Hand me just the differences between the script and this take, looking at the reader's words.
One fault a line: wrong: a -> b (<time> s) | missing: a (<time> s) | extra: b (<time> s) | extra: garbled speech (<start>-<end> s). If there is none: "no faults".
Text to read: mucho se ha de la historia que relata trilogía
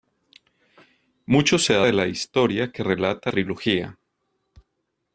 no faults